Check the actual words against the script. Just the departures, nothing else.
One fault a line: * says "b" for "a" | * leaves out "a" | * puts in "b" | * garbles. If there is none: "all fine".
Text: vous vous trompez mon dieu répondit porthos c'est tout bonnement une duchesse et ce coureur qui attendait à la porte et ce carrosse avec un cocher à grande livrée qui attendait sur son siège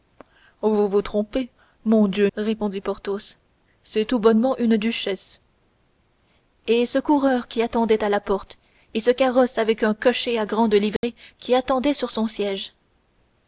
all fine